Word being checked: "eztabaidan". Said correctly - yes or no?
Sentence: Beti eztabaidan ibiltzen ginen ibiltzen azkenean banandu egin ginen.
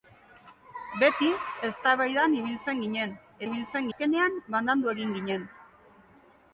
yes